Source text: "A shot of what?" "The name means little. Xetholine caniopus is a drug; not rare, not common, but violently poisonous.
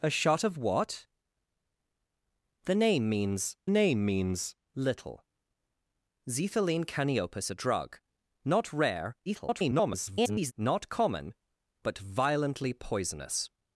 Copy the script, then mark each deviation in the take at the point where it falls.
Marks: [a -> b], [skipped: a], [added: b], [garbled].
"A shot of what?" "The name means [added: name means] little. Xetholine caniopus [skipped: is] a drug; not rare, [garbled] not common, but violently poisonous.